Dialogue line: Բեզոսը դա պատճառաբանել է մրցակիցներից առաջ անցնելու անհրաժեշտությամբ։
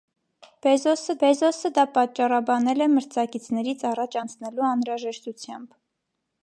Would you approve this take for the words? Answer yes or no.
no